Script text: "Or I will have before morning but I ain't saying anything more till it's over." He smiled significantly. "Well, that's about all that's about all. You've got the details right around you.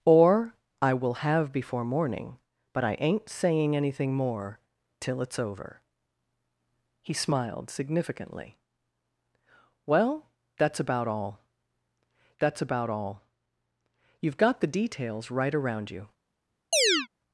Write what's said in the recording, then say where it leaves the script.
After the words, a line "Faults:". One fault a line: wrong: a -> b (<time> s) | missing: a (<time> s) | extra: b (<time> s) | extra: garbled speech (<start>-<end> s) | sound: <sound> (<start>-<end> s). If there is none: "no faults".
"Or I will have before morning but I ain't saying anything more till it's over." He smiled significantly. "Well, that's about all that's about all. You've got the details right around you.
Faults:
sound: chirp (16.7-17.1 s)